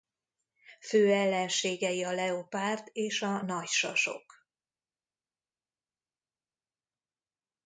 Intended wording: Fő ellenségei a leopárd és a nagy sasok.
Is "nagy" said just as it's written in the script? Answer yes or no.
yes